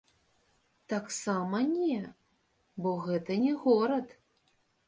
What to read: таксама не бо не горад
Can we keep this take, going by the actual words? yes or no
no